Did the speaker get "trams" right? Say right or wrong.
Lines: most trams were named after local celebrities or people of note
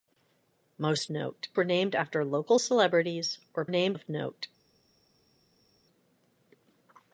wrong